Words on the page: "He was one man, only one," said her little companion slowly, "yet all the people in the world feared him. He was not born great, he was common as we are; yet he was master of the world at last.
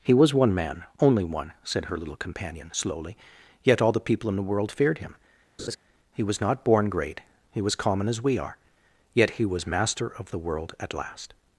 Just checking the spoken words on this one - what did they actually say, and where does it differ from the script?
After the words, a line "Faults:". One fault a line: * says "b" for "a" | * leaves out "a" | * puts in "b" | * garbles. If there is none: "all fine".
"He was one man, only one," said her little companion slowly, "yet all the people in the world feared him. He was not born great, he was common as we are; yet he was master of the world at last.
Faults:
all fine